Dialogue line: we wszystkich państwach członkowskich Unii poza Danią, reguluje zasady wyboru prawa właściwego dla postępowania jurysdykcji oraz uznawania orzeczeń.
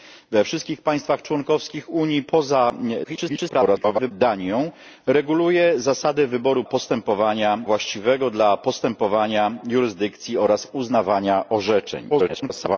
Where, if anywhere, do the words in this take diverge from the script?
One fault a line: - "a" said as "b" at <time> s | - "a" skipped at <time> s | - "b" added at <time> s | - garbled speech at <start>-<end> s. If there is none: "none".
- garbled speech at 3.0-4.1 s
- "prawa" said as "postępowania" at 6.6 s
- garbled speech at 12.1-12.8 s